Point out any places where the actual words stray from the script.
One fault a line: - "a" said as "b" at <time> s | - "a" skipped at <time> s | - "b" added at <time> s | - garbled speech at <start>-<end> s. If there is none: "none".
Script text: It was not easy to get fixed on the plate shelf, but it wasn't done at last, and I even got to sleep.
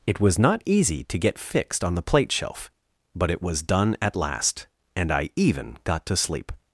- "wasn't" said as "was" at 3.4 s